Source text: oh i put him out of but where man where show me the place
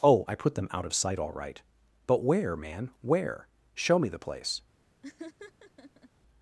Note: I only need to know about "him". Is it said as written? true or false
false